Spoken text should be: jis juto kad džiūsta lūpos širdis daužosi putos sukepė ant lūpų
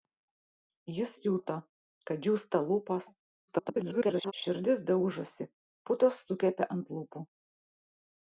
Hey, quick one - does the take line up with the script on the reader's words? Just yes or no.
no